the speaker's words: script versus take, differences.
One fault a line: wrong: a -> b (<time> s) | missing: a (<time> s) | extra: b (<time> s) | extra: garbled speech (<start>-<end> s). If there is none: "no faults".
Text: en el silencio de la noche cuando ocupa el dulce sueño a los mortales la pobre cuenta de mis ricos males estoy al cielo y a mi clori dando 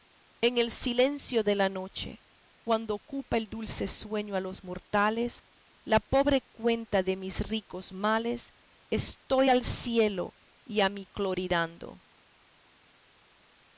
no faults